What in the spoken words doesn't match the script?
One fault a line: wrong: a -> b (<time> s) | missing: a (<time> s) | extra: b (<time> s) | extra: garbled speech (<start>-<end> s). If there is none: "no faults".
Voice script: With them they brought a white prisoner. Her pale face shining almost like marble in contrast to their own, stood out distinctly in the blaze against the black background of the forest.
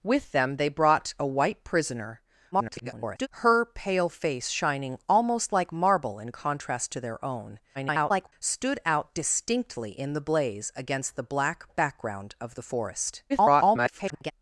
extra: garbled speech (2.5-3.3 s)
extra: garbled speech (7.7-8.3 s)
extra: garbled speech (13.3-14.3 s)